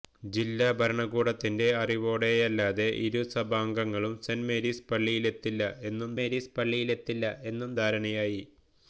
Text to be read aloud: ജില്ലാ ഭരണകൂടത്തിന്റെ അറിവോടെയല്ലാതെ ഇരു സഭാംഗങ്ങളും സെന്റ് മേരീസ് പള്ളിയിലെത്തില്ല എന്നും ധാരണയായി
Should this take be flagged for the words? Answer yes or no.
yes